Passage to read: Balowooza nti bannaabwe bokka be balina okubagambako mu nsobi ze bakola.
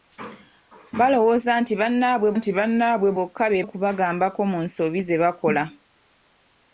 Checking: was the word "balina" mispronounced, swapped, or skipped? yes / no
yes